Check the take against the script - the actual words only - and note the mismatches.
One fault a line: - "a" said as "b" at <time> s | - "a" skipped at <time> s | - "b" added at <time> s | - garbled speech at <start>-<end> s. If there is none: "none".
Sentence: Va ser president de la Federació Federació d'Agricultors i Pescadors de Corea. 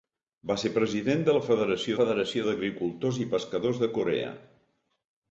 none